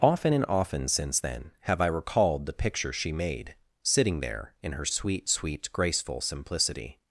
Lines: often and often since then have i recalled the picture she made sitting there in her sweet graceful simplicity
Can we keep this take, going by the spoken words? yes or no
no